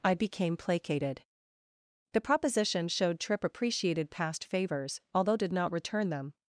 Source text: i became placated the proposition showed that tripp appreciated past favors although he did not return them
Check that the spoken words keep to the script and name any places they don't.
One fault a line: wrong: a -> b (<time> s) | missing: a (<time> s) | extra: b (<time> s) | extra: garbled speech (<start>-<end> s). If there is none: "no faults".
missing: that (3.2 s)
missing: he (5.4 s)